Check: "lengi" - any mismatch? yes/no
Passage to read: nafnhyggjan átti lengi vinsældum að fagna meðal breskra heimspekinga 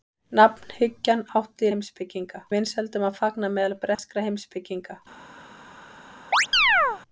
yes